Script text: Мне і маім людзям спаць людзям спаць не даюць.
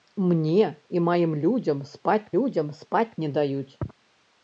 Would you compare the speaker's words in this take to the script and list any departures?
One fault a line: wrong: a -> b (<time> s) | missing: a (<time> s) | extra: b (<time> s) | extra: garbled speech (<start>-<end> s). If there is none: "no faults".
no faults